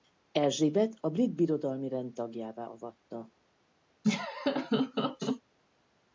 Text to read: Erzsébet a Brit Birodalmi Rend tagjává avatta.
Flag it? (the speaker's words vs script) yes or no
no